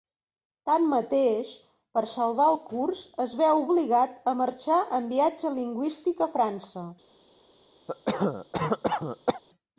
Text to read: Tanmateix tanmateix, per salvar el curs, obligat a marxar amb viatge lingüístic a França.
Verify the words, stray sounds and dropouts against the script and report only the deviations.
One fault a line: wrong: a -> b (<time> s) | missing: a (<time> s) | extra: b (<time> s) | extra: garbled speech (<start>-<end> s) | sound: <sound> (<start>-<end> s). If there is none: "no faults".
missing: tanmateix (1.5 s)
extra: es veu (3.3 s)
wrong: amb -> en (5.0 s)
sound: cough (7.9-9.4 s)